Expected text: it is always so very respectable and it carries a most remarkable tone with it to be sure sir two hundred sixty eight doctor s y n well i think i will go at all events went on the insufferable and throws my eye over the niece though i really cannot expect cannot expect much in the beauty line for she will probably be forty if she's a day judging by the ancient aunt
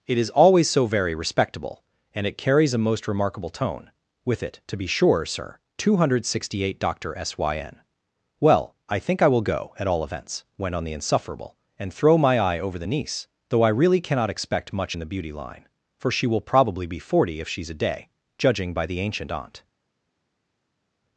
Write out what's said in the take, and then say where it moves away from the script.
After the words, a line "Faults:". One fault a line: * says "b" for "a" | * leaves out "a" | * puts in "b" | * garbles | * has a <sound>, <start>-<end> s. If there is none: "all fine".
it is always so very respectable and it carries a most remarkable tone with it to be sure sir two hundred sixty eight doctor s y n well i think i will go at all events went on the insufferable and throw my eye over the niece though i really cannot expect much in the beauty line for she will probably be forty if she's a day judging by the ancient aunt
Faults:
* says "throw" for "throws"
* leaves out "cannot expect"